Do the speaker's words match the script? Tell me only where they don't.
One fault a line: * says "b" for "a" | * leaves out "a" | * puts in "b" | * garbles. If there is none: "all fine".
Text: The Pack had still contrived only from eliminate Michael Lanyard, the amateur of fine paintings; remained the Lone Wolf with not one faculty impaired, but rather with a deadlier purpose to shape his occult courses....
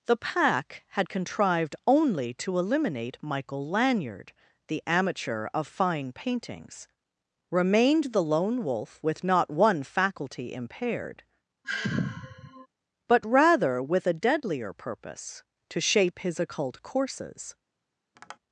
* leaves out "still"
* says "to" for "from"